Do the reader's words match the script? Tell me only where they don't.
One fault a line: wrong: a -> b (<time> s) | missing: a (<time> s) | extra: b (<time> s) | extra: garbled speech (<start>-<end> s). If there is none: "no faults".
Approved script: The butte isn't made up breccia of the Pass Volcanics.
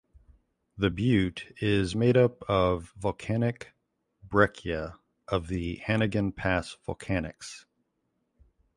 wrong: isn't -> is (1.6 s)
extra: of volcanic (2.5 s)
extra: Hannegan (5.9 s)